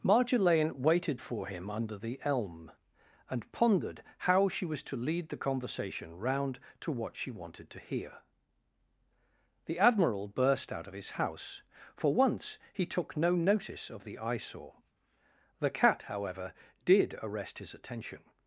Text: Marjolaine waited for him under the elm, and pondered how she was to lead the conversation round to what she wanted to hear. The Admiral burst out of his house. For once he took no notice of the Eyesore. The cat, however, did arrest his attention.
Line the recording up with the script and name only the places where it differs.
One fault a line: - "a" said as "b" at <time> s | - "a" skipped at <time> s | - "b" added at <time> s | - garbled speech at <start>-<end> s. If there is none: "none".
none